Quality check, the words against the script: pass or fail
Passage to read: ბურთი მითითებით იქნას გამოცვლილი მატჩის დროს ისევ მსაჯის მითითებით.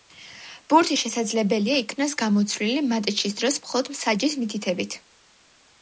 fail